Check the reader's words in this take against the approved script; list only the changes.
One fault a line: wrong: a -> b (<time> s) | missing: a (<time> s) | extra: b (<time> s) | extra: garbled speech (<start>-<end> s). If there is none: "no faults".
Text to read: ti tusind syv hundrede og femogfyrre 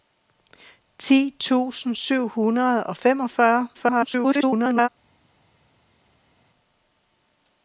extra: garbled speech (3.7-4.9 s)